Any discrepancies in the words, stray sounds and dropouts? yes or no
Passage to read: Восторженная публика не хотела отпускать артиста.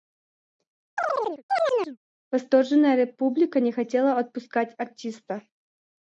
yes